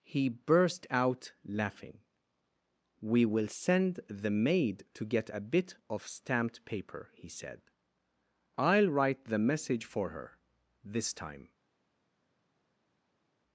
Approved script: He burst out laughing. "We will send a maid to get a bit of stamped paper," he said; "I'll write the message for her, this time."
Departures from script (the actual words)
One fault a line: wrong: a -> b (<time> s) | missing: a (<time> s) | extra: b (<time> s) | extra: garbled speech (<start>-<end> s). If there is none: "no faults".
wrong: a -> the (4.1 s)